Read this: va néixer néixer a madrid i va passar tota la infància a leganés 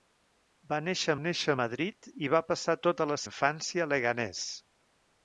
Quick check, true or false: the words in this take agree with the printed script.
true